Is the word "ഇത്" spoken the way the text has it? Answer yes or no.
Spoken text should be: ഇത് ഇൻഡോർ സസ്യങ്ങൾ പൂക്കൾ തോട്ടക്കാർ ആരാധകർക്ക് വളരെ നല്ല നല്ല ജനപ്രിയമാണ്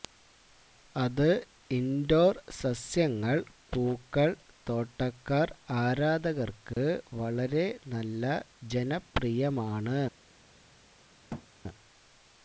no